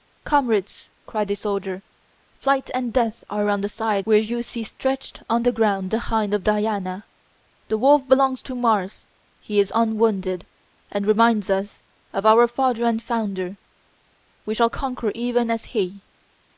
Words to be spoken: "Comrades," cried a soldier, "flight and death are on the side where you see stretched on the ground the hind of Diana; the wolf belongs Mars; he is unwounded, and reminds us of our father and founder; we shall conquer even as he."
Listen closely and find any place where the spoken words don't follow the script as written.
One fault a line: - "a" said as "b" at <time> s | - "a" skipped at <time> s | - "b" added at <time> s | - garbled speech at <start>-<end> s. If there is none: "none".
- "to" added at 8.4 s